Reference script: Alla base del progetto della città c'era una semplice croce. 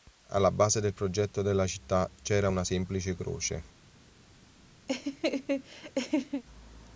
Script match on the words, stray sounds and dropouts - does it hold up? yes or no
no